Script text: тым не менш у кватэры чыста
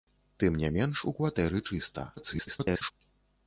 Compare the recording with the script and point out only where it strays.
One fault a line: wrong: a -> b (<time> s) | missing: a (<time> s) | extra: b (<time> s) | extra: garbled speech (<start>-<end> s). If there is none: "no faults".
extra: garbled speech (2.2-2.9 s)